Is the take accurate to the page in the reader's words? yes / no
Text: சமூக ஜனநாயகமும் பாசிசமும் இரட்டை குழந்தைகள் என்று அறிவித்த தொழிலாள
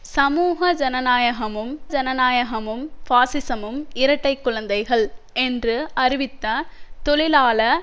no